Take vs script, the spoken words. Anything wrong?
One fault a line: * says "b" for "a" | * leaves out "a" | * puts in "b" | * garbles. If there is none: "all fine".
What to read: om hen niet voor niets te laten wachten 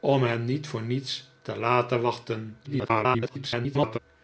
* garbles